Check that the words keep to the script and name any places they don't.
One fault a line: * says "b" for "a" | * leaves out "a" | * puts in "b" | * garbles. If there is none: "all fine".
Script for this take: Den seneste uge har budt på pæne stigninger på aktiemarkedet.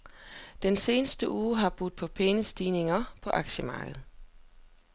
all fine